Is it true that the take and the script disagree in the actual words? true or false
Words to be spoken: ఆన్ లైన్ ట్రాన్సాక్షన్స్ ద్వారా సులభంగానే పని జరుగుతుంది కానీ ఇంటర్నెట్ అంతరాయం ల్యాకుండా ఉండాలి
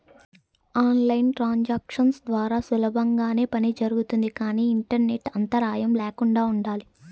false